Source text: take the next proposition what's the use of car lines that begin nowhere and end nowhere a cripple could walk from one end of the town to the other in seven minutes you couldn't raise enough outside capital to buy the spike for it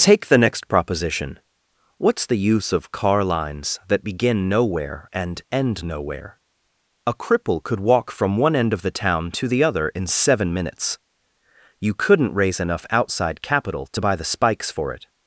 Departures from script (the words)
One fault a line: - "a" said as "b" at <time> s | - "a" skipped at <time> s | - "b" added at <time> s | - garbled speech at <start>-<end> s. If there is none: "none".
- "spike" said as "spikes" at 14.3 s